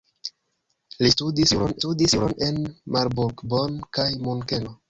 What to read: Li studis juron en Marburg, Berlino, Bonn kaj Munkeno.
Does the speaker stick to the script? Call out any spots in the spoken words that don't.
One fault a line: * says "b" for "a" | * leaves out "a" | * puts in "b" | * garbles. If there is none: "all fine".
* puts in "studis juron"
* leaves out "Berlino"